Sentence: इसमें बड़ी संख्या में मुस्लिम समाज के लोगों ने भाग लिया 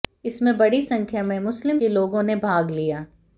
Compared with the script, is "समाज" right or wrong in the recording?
wrong